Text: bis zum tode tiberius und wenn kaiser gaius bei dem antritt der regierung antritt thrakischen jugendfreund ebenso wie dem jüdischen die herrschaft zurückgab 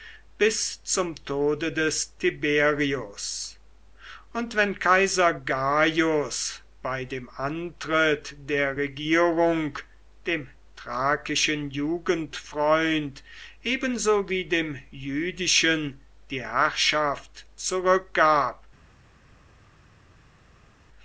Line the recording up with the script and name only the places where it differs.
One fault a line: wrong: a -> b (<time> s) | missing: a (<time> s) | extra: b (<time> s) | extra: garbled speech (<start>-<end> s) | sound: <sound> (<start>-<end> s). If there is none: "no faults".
extra: des (1.7 s)
wrong: antritt -> dem (10.3 s)